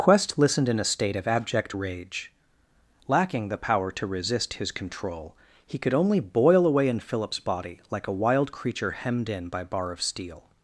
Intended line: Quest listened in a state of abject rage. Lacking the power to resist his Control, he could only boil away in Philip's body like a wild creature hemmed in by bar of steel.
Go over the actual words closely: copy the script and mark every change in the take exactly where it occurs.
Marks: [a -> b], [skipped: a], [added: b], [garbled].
Quest listened in a state of abject rage. Lacking the power to resist his Control, he could only boil away in Philip's body like a wild creature hemmed in by bar of steel.